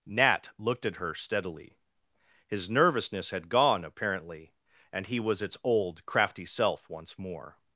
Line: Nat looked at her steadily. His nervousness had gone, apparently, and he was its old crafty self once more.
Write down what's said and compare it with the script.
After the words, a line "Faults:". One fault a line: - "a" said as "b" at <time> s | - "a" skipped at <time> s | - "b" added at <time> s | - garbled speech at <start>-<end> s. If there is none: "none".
Nat looked at her steadily. His nervousness had gone, apparently, and he was its old crafty self once more.
Faults:
none